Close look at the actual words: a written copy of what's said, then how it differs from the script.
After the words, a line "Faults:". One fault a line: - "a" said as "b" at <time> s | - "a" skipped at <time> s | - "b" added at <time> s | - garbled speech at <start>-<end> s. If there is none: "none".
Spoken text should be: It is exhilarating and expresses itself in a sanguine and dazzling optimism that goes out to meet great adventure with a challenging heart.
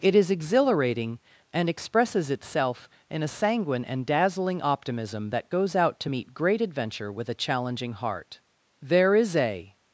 It is exhilarating and expresses itself in a sanguine and dazzling optimism that goes out to meet great adventure with a challenging heart. There is a
Faults:
- "There is a" added at 8.8 s